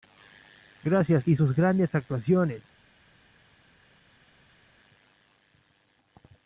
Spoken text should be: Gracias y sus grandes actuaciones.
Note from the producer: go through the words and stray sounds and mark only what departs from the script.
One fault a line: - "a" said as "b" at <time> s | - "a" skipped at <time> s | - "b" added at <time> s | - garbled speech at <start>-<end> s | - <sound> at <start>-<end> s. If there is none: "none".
none